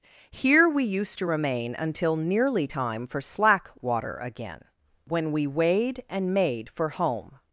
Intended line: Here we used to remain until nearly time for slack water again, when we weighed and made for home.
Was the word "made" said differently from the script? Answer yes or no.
no